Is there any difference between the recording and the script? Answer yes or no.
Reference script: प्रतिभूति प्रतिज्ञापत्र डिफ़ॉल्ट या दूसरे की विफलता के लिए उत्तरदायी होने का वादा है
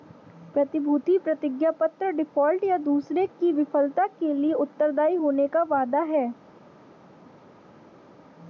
no